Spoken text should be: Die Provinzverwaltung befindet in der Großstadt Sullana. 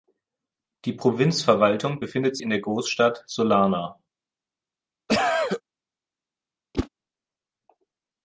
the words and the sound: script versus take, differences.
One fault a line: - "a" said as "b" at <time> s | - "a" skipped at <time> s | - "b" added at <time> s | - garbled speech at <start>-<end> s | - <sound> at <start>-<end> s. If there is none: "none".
- cough at 5.1-5.6 s
- whoosh at 6.7-6.9 s